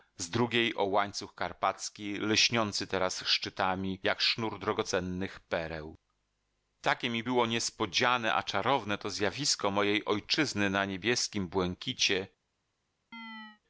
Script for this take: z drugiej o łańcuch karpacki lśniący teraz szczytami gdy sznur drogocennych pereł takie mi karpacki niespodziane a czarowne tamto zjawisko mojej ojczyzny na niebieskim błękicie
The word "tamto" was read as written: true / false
false